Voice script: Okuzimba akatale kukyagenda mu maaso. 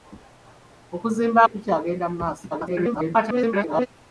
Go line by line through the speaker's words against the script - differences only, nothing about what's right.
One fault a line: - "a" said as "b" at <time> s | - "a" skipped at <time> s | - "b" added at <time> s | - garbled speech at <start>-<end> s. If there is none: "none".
- "akatale" skipped at 1.4 s
- garbled speech at 2.5-3.9 s